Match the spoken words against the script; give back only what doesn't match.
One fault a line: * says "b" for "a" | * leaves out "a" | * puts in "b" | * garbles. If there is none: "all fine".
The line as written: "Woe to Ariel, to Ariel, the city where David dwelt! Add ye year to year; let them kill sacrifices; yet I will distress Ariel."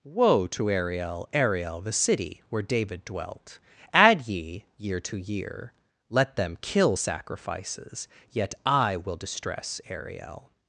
* leaves out "to"